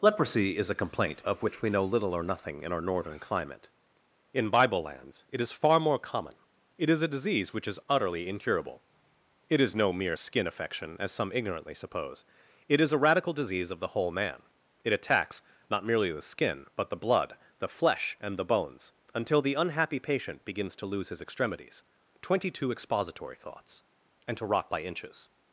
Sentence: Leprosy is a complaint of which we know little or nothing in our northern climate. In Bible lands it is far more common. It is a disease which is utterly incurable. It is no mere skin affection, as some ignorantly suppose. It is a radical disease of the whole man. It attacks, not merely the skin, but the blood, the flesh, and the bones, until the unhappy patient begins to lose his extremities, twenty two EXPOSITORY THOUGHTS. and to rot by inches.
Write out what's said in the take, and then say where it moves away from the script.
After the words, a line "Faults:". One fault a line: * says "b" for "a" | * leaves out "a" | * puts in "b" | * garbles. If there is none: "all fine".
Leprosy is a complaint of which we know little or nothing in our northern climate. In Bible lands it is far more common. It is a disease which is utterly incurable. It is no mere skin affection, as some ignorantly suppose. It is a radical disease of the whole man. It attacks, not merely the skin, but the blood, the flesh, and the bones, until the unhappy patient begins to lose his extremities, twenty two EXPOSITORY THOUGHTS. and to rot by inches.
Faults:
all fine